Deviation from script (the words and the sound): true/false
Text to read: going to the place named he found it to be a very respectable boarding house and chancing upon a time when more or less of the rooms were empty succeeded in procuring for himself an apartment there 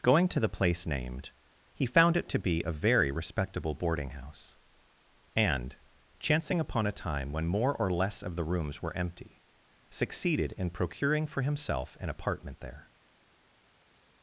false